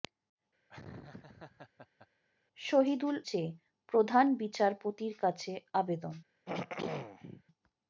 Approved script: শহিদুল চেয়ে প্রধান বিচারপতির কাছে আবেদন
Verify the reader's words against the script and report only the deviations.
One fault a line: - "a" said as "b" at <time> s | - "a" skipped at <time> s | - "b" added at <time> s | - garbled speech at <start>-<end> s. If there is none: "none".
none